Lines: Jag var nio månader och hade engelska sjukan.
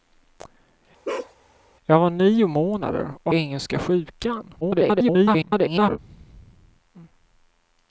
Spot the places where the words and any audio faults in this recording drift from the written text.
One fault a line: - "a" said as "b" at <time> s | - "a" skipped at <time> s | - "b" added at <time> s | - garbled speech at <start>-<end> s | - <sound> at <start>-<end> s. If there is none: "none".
- bark at 1.0-1.3 s
- "hade" skipped at 3.3 s
- garbled speech at 4.6-6.0 s